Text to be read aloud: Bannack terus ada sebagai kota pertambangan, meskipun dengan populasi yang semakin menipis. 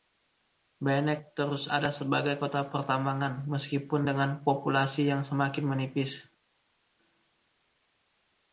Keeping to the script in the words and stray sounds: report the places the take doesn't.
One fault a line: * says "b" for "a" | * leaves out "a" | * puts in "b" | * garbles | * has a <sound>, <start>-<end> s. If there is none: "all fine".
all fine